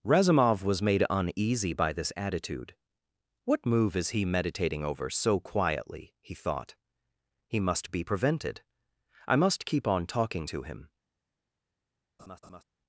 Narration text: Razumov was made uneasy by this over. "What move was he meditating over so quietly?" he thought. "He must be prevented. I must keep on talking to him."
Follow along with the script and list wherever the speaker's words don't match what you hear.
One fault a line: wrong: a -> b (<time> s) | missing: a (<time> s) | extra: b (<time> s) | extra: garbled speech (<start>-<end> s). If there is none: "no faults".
wrong: over -> attitude (2.2 s)
wrong: was -> is (4.0 s)